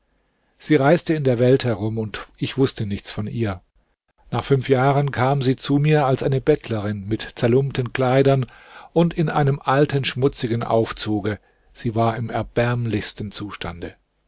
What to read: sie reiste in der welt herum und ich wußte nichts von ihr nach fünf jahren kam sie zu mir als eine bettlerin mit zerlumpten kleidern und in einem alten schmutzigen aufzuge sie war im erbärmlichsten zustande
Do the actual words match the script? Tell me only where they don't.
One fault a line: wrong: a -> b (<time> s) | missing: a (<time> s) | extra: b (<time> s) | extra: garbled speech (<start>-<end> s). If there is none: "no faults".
no faults